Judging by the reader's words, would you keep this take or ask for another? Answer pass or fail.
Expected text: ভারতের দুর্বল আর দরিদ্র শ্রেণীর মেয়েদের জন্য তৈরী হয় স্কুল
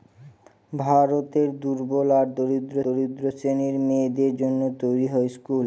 fail